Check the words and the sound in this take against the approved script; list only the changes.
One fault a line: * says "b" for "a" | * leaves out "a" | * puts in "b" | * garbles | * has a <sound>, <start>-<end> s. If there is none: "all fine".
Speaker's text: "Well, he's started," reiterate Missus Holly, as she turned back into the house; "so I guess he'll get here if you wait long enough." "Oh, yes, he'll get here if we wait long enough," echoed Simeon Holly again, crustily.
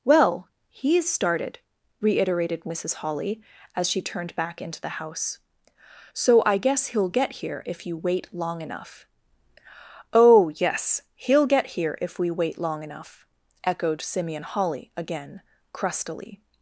* says "reiterated" for "reiterate"